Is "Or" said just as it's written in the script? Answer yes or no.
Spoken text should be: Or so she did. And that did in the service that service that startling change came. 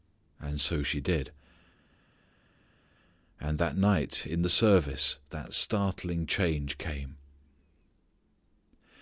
no